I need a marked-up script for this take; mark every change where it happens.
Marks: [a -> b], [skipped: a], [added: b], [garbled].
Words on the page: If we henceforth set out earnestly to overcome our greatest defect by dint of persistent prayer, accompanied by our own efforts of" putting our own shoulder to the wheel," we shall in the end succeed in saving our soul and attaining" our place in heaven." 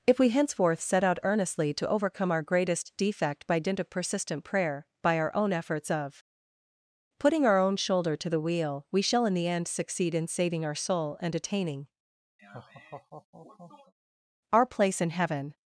If we henceforth set out earnestly to overcome our greatest defect by dint of persistent prayer, [skipped: accompanied] by our own efforts of" putting our own shoulder to the wheel," we shall in the end succeed in saving our soul and attaining" our place in heaven."